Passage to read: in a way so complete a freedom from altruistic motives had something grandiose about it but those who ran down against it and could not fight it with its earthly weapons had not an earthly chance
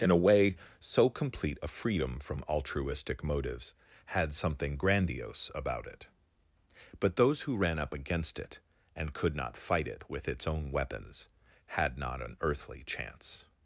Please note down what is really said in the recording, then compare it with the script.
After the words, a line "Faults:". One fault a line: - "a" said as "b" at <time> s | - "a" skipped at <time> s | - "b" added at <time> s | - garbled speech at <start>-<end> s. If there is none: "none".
in a way so complete a freedom from altruistic motives had something grandiose about it but those who ran up against it and could not fight it with its own weapons had not an earthly chance
Faults:
- "down" said as "up" at 7.8 s
- "earthly" said as "own" at 10.5 s